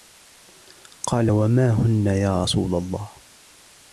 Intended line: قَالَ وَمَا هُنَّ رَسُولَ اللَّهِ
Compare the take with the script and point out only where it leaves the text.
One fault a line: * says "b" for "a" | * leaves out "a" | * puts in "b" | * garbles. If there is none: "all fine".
* puts in "يَا"